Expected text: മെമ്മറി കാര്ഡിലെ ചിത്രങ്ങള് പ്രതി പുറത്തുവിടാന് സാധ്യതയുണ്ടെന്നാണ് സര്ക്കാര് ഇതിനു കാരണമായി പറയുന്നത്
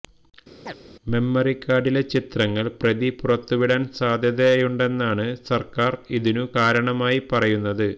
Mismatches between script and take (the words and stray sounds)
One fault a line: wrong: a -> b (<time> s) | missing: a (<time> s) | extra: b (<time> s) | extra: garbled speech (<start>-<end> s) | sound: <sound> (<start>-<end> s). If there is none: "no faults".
sound: chirp (0.7-0.7 s)